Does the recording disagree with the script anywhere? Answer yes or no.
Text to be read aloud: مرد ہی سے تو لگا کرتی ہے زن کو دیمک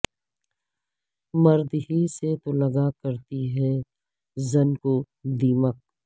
no